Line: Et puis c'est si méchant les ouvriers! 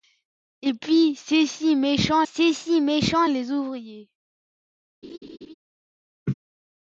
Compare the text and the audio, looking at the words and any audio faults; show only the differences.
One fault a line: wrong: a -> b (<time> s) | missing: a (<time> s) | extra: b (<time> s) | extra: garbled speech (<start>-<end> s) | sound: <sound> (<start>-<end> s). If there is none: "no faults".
extra: c'est si méchant (2.2 s)
sound: laugh (5.0-5.5 s)
sound: laugh (6.3-6.3 s)